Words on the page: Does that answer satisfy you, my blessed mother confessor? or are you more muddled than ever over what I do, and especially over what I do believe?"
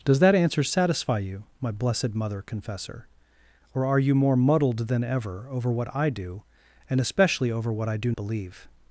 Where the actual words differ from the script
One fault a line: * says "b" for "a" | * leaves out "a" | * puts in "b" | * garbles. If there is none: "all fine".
all fine